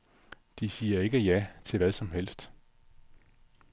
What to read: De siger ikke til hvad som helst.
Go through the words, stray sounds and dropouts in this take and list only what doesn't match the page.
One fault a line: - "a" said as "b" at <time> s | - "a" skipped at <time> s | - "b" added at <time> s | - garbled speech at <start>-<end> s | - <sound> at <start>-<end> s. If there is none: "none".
- "ja" added at 1.2 s